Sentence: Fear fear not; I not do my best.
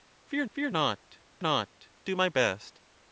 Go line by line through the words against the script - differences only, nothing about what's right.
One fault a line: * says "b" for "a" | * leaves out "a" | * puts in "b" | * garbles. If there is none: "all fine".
all fine